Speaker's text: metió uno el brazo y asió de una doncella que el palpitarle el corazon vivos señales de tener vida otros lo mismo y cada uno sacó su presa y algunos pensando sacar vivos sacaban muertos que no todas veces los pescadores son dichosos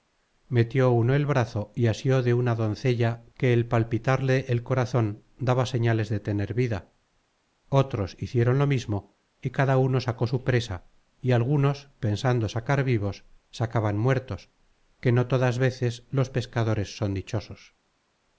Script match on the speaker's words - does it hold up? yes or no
no